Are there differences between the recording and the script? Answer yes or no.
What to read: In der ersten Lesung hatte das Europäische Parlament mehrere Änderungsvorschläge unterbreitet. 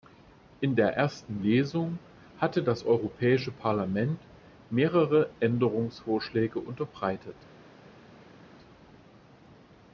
no